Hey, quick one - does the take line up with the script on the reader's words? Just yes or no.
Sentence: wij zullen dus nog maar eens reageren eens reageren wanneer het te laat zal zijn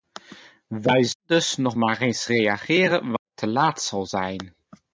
no